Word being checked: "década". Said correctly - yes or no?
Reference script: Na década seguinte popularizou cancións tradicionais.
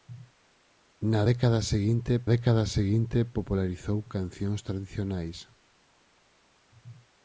yes